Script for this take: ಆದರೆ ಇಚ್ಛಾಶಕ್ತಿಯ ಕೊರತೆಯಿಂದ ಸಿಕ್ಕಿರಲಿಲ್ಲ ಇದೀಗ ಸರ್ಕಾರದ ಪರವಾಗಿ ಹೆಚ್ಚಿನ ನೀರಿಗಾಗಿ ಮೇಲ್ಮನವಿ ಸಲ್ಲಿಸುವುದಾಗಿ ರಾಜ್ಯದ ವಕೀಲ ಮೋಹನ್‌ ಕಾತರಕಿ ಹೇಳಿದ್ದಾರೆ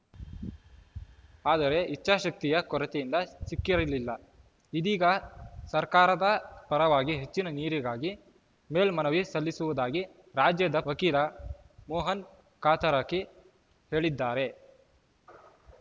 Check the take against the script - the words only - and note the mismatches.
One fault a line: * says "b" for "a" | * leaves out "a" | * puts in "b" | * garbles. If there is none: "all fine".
all fine